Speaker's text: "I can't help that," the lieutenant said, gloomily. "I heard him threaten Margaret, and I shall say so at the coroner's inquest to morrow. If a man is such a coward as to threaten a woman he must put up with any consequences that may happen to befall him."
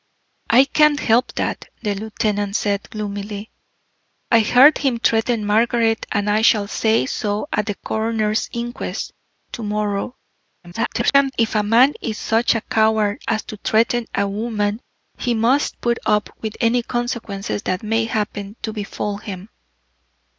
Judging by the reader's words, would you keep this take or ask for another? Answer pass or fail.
fail